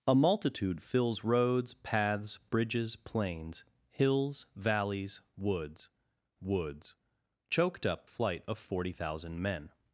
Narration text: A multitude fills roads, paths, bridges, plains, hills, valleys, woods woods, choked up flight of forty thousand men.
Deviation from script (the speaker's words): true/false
false